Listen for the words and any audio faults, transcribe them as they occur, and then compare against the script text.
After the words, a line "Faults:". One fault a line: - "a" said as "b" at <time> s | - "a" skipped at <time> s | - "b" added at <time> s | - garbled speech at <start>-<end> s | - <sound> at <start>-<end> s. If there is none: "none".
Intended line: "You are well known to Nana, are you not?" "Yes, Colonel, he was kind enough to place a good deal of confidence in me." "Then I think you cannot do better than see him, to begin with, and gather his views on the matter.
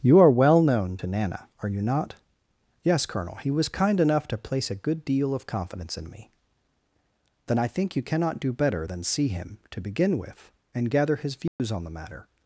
"You are well known to Nana, are you not?" "Yes, Colonel, he was kind enough to place a good deal of confidence in me." "Then I think you cannot do better than see him, to begin with, and gather his views on the matter.
Faults:
- dropout at 11.5-11.6 s